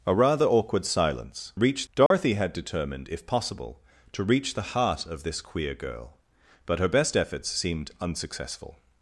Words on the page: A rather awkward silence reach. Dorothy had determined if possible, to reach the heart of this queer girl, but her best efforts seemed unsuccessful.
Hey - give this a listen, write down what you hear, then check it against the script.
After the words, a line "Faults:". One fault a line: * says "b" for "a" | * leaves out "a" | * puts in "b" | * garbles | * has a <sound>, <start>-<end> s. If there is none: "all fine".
A rather awkward silence reach. Dorothy had determined if possible, to reach the heart of this queer girl, but her best efforts seemed unsuccessful.
Faults:
* has a dropout, 2.1-2.1 s